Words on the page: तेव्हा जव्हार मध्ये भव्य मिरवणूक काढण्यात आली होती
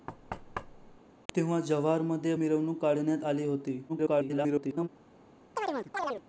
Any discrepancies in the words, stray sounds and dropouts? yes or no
yes